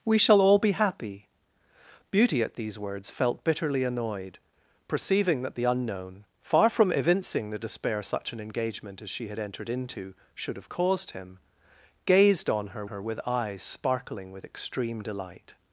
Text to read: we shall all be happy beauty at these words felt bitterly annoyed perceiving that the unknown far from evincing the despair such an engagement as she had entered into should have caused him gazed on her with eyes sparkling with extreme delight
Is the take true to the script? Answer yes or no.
no